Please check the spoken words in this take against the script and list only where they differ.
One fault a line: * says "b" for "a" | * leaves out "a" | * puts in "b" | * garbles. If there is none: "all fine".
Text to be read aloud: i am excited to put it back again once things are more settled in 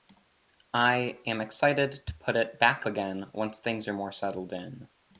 all fine